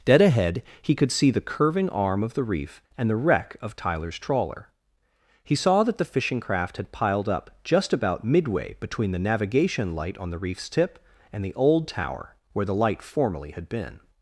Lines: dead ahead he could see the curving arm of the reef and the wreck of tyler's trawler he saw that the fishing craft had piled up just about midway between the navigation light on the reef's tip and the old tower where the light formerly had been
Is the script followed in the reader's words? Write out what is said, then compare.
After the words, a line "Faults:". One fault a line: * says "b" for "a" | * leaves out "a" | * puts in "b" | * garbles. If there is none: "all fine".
dead ahead he could see the curving arm of the reef and the wreck of tyler's trawler he saw that the fishing craft had piled up just about midway between the navigation light on the reef's tip and the old tower where the light formerly had been
Faults:
all fine